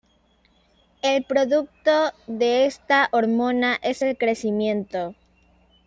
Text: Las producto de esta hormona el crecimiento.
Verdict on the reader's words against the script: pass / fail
fail